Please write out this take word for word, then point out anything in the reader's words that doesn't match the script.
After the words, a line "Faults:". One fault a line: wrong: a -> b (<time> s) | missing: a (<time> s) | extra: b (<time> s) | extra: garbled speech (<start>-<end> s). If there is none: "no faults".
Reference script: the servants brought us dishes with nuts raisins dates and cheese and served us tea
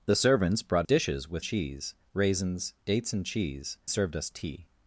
the servants brought dishes with cheese raisins dates and cheese served us tea
Faults:
missing: us (0.9 s)
wrong: nuts -> cheese (1.4 s)
missing: and (3.8 s)